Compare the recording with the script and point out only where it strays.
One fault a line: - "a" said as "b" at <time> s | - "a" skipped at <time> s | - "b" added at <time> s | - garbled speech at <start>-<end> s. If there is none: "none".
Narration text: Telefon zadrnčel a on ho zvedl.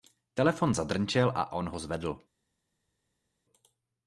none